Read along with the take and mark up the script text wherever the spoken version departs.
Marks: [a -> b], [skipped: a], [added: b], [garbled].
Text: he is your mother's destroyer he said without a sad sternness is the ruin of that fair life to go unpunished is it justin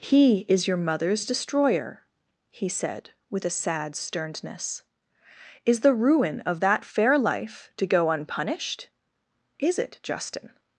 he is your mother's destroyer he said [without -> with] a sad sternness is the ruin of that fair life to go unpunished is it justin